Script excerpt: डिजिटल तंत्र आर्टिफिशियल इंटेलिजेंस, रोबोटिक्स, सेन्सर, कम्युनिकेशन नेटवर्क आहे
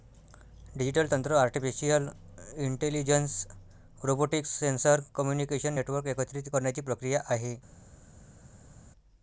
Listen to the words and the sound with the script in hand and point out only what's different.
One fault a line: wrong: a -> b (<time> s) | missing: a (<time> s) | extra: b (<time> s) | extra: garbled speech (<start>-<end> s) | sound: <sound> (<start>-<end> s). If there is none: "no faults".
extra: एकत्रित करण्याची प्रक्रिया (6.2 s)